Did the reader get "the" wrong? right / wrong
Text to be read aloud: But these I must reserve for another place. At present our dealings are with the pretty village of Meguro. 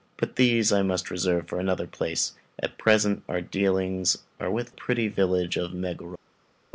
wrong